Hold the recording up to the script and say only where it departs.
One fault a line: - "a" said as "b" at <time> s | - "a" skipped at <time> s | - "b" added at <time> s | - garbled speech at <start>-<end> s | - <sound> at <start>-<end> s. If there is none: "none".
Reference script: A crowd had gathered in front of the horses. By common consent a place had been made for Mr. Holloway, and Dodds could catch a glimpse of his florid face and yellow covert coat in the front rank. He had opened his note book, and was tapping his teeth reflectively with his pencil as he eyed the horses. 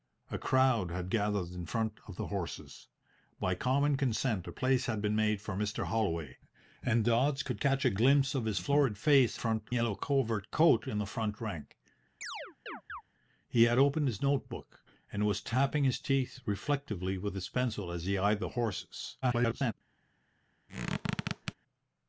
- "and" said as "front" at 9.4 s
- chirp at 12.2-13.0 s
- garbled speech at 19.2-19.7 s
- squeak at 20.7-21.5 s